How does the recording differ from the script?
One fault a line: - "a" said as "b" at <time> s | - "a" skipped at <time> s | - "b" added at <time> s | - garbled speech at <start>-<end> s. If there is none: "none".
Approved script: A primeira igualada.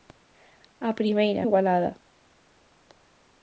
none